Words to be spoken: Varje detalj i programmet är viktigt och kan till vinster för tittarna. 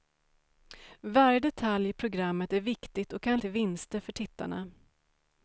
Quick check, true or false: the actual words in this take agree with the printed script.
true